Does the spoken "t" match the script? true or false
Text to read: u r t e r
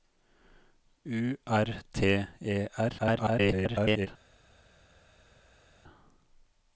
true